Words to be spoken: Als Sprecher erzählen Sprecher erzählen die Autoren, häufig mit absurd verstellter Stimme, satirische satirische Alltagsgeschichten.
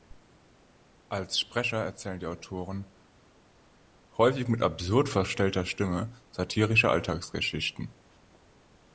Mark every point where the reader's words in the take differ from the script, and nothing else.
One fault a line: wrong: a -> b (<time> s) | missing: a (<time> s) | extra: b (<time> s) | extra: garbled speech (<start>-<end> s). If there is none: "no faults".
missing: Sprecher erzählen (2.2 s)
missing: satirische (6.9 s)